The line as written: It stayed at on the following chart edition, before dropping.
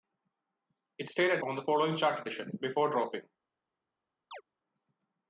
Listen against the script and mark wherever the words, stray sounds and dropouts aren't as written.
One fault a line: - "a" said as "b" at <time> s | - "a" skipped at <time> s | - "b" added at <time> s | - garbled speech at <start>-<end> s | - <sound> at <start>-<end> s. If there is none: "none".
- chirp at 4.3-4.4 s